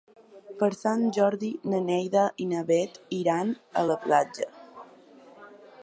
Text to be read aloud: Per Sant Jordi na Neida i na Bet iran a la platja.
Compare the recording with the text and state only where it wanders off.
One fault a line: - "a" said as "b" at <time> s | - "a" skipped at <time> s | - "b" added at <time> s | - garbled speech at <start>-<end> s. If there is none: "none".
none